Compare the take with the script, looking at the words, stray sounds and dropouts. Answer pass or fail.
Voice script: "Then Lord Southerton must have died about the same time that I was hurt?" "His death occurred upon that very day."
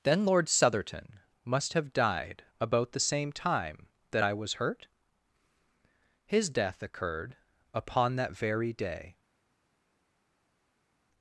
pass